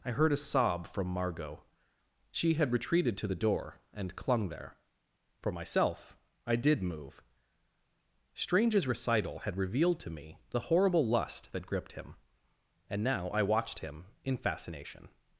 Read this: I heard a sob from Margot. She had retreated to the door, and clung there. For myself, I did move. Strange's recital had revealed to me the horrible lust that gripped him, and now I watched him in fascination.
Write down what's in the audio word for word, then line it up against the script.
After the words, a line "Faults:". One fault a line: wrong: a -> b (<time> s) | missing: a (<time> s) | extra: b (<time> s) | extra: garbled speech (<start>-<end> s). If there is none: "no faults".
I heard a sob from Margot. She had retreated to the door, and clung there. For myself, I did move. Strange's recital had revealed to me the horrible lust that gripped him, and now I watched him in fascination.
Faults:
no faults